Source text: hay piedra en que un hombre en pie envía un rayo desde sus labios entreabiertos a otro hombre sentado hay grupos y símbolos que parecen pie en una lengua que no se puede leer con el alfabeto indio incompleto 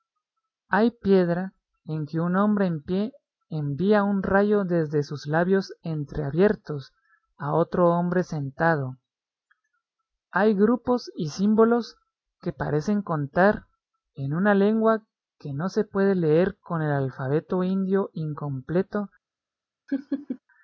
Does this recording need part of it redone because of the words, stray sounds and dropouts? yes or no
yes